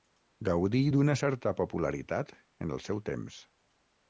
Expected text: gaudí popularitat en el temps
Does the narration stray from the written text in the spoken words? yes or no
yes